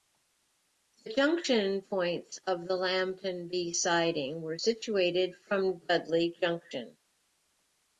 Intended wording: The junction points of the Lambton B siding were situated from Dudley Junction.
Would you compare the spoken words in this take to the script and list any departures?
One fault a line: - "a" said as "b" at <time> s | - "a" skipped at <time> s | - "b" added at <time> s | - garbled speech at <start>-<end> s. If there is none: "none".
none